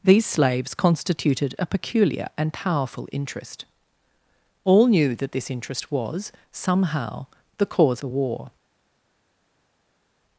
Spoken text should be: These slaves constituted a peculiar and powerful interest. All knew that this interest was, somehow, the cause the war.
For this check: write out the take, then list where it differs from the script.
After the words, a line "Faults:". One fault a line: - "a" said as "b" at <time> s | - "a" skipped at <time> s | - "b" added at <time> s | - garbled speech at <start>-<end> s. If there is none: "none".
These slaves constituted a peculiar and powerful interest. All knew that this interest was, somehow, the cause the war.
Faults:
none